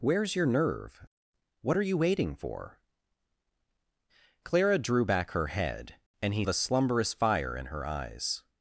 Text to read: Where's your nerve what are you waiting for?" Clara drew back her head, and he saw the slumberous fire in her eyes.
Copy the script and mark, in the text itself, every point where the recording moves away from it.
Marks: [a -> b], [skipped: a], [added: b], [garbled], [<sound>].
Where's your nerve what are you waiting for?" Clara drew back her head, and he [skipped: saw] the slumberous fire in her eyes.